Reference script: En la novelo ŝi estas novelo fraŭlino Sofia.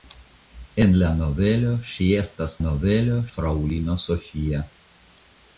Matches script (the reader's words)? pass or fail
pass